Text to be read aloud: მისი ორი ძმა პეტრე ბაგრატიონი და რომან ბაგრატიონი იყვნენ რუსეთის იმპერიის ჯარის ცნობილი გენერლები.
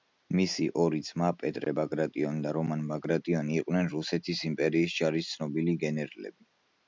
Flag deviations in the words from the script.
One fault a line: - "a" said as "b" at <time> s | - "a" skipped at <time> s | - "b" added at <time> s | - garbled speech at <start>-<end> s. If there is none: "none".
none